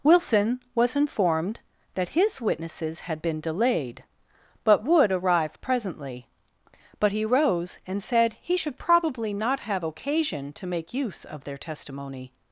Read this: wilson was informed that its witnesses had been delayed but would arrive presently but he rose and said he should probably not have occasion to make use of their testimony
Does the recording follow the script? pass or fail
fail